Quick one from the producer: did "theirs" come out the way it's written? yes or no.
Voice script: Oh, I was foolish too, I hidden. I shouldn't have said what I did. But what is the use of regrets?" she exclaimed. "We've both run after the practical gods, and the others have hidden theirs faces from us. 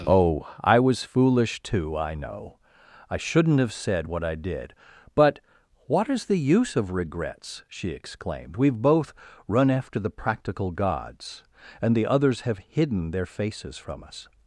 no